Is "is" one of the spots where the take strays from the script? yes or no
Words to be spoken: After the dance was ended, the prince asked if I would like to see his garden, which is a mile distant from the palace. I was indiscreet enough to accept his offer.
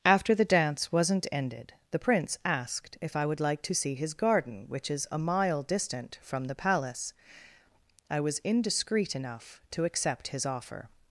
no